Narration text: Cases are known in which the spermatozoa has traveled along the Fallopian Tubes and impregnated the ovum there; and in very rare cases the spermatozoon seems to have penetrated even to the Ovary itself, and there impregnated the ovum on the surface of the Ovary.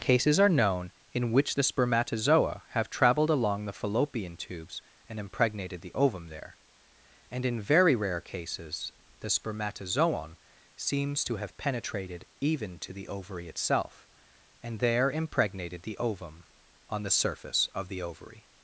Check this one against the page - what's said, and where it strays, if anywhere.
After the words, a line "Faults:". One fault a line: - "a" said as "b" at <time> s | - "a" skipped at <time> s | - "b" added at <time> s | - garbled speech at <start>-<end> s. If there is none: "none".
Cases are known in which the spermatozoa have traveled along the Fallopian Tubes and impregnated the ovum there; and in very rare cases the spermatozoon seems to have penetrated even to the Ovary itself, and there impregnated the ovum on the surface of the Ovary.
Faults:
- "has" said as "have" at 2.7 s